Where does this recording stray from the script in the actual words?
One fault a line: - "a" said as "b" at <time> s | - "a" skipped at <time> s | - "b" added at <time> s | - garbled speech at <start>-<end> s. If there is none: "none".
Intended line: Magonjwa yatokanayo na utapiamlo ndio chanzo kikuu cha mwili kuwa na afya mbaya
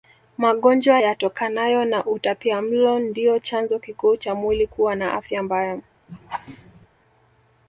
none